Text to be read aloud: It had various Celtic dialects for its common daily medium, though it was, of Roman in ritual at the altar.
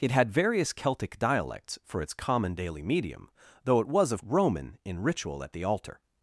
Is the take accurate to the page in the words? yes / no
yes